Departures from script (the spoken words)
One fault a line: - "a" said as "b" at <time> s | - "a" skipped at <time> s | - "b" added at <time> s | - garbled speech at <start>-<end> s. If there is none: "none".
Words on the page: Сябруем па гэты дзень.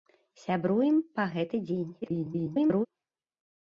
- garbled speech at 2.0-2.9 s